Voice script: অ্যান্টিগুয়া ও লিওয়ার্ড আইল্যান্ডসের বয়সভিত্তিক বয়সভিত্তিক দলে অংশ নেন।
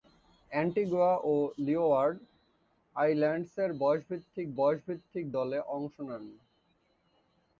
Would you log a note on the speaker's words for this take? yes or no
no